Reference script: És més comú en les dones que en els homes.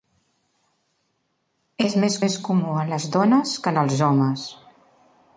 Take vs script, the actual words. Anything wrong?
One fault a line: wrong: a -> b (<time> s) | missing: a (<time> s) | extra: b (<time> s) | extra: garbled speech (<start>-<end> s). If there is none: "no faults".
extra: més (2.2 s)